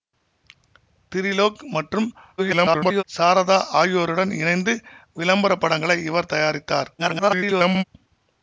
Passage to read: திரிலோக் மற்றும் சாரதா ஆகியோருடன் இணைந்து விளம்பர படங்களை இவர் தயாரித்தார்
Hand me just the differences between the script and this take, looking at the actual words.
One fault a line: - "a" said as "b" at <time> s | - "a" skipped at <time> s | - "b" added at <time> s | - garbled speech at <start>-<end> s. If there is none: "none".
- garbled speech at 2.4-3.0 s
- garbled speech at 7.0-7.8 s